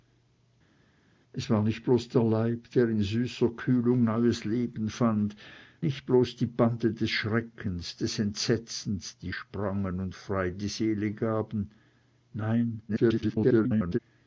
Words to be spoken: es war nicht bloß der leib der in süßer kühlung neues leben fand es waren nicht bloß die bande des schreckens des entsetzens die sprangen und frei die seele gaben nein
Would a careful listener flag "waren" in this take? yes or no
yes